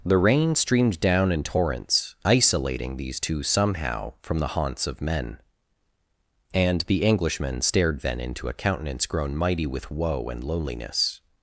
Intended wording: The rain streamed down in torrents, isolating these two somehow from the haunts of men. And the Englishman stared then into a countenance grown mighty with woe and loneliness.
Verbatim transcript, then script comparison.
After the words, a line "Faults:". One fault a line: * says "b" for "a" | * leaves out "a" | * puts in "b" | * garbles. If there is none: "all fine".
The rain streamed down in torrents, isolating these two somehow from the haunts of men. And the Englishman stared then into a countenance grown mighty with woe and loneliness.
Faults:
all fine